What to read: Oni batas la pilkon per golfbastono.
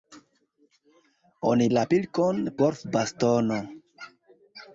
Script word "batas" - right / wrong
wrong